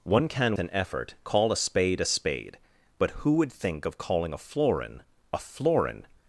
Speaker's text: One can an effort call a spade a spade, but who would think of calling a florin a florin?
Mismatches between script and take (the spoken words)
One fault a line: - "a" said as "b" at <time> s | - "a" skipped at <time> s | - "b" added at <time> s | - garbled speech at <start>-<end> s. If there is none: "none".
none